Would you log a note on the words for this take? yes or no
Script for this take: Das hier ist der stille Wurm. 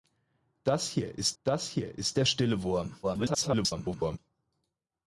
yes